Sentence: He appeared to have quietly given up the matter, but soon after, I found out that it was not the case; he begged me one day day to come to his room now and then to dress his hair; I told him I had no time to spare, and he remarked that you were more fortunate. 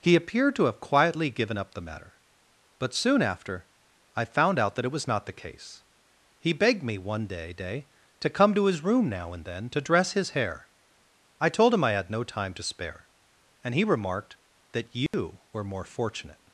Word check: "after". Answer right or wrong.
right